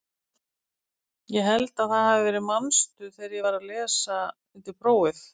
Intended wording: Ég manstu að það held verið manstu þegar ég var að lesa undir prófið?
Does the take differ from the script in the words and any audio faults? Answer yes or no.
yes